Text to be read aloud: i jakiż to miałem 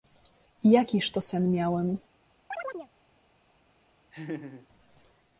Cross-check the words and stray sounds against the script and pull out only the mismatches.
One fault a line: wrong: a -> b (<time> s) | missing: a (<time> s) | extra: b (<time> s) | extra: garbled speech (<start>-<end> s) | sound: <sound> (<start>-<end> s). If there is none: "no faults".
extra: sen (1.2 s)
sound: chirp (2.5-2.9 s)
sound: laugh (4.1-4.7 s)